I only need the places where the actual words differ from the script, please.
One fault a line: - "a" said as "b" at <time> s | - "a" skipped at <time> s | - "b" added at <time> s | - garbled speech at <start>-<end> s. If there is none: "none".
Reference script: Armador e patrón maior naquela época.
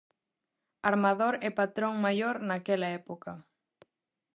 none